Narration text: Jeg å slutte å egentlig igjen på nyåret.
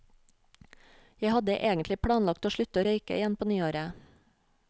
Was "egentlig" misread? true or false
true